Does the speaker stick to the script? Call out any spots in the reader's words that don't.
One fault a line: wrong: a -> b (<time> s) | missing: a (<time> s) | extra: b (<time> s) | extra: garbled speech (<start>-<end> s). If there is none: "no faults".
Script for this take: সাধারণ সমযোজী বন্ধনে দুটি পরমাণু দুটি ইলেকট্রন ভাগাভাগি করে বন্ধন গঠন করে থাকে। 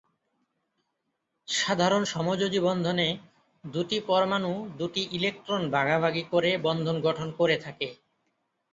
no faults